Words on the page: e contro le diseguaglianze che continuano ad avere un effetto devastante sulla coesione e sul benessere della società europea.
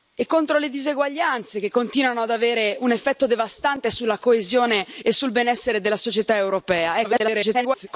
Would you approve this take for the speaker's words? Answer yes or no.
no